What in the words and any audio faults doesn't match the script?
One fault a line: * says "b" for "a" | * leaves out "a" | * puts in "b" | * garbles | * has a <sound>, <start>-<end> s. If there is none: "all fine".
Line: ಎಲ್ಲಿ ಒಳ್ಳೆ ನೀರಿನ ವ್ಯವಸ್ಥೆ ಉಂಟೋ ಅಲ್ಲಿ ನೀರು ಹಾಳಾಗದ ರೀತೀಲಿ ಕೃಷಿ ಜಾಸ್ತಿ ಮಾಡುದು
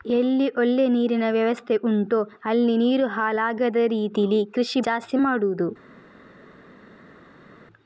all fine